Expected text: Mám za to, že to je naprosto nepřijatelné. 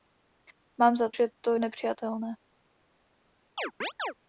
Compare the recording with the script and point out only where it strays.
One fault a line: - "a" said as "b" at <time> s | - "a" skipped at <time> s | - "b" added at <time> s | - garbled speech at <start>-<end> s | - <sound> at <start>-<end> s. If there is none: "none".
- "to" skipped at 1.1 s
- "je naprosto" skipped at 1.6 s
- chirp at 3.6-4.1 s